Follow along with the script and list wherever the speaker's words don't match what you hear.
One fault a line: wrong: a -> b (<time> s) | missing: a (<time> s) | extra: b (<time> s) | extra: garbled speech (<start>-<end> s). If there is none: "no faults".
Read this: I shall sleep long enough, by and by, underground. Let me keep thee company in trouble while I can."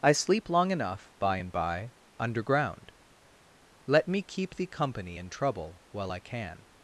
missing: shall (0.1 s)